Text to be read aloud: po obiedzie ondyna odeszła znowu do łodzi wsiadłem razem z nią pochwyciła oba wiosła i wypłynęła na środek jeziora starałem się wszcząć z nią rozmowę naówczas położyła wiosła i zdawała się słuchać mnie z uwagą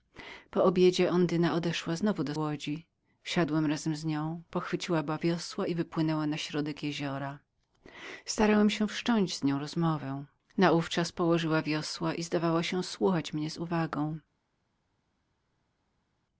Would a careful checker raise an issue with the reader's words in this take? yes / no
no